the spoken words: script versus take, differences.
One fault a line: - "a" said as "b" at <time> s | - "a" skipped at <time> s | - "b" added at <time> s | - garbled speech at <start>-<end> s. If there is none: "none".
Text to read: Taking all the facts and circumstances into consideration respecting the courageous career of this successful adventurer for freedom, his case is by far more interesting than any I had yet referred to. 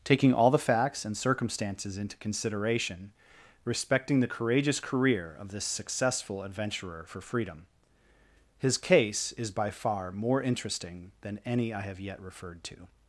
- "had" said as "have" at 11.8 s